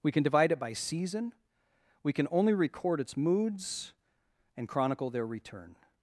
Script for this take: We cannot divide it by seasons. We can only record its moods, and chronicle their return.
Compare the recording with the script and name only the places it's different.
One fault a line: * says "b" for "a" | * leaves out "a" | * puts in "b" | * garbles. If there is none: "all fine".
* says "can" for "cannot"
* says "season" for "seasons"